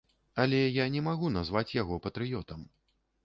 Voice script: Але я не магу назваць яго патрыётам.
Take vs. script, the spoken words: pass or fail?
pass